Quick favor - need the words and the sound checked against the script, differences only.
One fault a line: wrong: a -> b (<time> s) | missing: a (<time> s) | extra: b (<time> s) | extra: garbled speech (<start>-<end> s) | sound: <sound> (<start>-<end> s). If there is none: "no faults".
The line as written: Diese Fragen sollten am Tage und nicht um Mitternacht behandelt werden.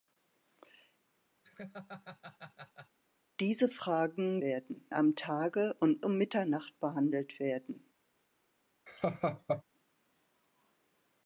sound: laugh (1.4-3.0 s)
wrong: sollten -> werden (4.4 s)
missing: nicht (6.1 s)
sound: laugh (8.9-9.6 s)